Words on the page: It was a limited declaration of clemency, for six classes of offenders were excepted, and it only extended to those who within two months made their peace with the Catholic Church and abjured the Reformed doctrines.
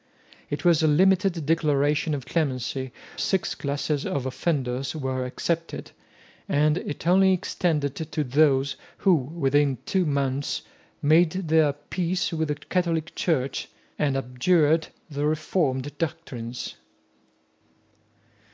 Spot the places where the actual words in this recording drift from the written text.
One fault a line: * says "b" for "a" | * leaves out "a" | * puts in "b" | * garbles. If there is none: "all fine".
* leaves out "for"